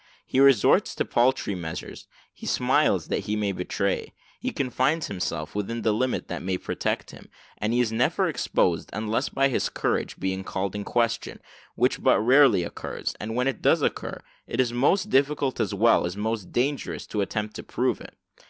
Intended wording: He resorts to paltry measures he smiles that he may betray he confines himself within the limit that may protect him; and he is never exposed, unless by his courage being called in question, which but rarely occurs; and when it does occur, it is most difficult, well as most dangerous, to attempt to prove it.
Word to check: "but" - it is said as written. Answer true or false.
true